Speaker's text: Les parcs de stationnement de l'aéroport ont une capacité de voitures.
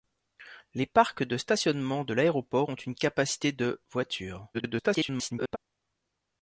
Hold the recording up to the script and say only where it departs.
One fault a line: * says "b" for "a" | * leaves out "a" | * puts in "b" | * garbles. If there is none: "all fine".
* garbles